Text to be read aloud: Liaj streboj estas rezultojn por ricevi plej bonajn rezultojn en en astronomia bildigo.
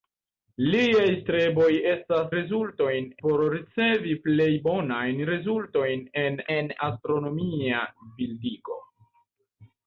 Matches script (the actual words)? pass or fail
pass